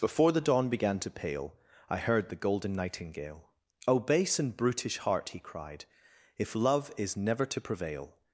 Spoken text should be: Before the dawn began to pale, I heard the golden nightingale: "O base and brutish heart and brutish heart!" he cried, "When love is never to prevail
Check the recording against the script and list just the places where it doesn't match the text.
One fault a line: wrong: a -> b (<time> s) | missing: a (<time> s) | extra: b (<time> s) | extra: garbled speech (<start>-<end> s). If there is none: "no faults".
missing: and brutish heart (5.3 s)
wrong: When -> If (6.4 s)